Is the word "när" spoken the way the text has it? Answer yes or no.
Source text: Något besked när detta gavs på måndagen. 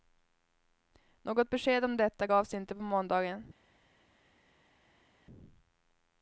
no